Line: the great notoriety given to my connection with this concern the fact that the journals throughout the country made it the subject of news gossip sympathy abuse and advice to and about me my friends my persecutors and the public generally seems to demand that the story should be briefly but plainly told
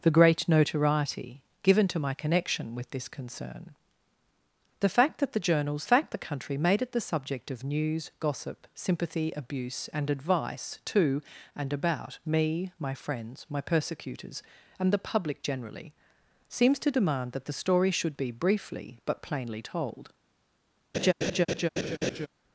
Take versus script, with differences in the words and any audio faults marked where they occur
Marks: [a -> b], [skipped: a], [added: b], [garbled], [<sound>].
the great notoriety given to my connection with this concern the fact that the journals [throughout -> fact] the country made it the subject of news gossip sympathy abuse and advice to and about me my friends my persecutors and the public generally seems to demand that the story should be briefly but plainly told [laugh]